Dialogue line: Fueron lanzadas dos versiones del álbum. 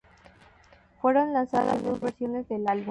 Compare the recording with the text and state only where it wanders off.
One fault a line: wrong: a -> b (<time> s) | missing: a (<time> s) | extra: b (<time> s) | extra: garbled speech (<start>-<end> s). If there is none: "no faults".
no faults